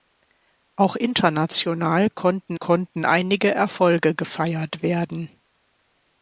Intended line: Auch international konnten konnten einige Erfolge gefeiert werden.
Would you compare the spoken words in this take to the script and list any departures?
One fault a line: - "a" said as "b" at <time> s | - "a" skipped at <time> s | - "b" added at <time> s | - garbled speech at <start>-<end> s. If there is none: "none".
none